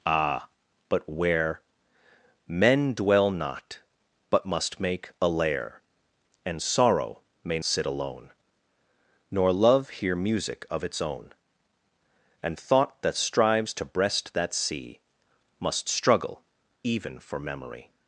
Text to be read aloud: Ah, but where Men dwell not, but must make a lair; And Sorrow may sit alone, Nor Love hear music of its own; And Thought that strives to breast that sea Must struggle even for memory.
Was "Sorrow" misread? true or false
false